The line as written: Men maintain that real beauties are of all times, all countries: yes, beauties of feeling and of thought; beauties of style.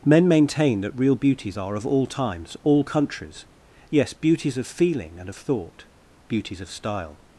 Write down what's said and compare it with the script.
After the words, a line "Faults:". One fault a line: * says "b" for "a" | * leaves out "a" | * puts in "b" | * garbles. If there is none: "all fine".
Men maintain that real beauties are of all times, all countries: yes, beauties of feeling and of thought; beauties of style.
Faults:
all fine